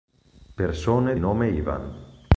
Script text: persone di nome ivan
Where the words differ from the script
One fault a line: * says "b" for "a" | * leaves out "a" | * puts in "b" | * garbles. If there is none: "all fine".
* leaves out "di"